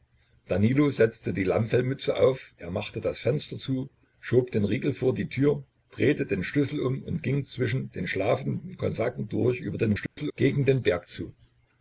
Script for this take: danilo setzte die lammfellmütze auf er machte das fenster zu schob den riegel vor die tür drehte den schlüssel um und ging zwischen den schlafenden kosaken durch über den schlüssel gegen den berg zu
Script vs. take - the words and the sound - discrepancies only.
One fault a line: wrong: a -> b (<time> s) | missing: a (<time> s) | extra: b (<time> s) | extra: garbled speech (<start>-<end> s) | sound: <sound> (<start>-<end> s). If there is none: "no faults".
sound: dropout (10.1-10.2 s)